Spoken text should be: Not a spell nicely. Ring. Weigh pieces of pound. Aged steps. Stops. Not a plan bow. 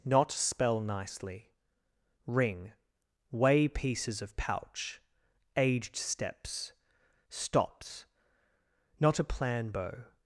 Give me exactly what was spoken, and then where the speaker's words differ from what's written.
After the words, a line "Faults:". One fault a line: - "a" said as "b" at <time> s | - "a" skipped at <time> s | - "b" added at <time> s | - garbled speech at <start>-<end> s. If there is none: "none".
Not spell nicely. Ring. Weigh pieces of pouch. Aged steps. Stops. Not a plan bow.
Faults:
- "a" skipped at 0.3 s
- "pound" said as "pouch" at 4.4 s